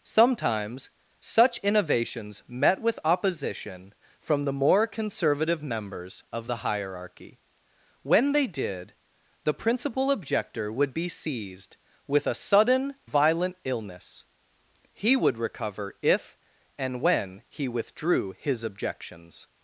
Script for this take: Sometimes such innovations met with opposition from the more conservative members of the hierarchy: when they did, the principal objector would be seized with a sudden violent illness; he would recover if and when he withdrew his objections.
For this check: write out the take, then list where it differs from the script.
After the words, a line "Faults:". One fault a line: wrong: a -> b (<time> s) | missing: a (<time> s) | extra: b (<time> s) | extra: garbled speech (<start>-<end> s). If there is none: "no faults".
Sometimes such innovations met with opposition from the more conservative members of the hierarchy: when they did, the principal objector would be seized with a sudden violent illness; he would recover if and when he withdrew his objections.
Faults:
no faults